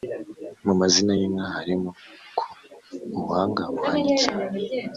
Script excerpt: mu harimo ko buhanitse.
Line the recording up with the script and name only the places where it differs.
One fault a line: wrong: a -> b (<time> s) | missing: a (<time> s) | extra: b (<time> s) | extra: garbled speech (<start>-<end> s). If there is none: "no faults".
extra: mazina y'inka (0.8 s)
extra: ubuhanga (3.2 s)